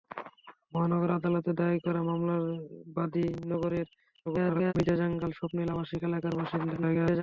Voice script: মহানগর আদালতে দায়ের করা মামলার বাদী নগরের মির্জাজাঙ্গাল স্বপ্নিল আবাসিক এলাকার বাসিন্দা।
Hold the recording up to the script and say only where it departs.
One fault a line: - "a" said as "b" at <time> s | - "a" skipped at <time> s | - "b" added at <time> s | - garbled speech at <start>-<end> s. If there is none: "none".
- garbled speech at 4.3-4.7 s
- garbled speech at 6.8-7.2 s